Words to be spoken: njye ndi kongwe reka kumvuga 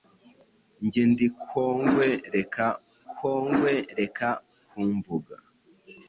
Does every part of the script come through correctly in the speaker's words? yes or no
no